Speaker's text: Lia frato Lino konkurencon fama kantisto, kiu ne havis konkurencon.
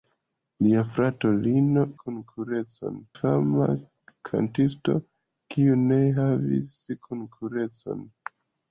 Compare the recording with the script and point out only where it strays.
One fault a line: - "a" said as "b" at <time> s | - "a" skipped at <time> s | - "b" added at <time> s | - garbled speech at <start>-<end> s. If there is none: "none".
none